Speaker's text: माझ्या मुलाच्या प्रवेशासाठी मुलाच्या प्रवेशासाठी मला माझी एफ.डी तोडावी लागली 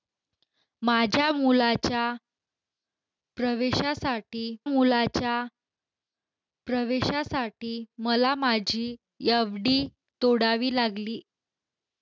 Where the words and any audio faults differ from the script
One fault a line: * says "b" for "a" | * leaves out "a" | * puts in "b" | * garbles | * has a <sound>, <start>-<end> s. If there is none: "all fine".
all fine